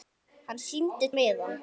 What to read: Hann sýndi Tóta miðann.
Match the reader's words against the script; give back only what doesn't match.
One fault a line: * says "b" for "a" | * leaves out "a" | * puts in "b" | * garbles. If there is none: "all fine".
* leaves out "Tóta"